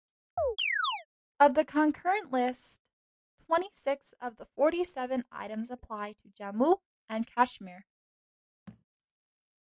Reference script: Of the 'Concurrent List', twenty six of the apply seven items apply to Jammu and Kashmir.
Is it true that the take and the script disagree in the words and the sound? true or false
true